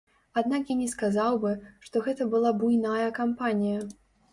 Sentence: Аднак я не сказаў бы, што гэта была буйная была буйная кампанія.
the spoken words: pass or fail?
fail